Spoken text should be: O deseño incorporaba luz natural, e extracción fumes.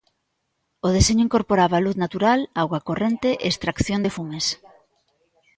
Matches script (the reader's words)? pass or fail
fail